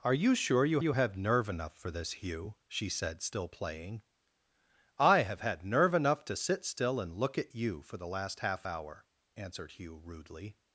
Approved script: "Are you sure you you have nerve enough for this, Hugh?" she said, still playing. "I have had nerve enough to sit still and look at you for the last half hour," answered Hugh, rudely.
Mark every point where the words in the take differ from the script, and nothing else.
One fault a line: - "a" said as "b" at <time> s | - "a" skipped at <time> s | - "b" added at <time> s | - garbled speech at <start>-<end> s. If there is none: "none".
none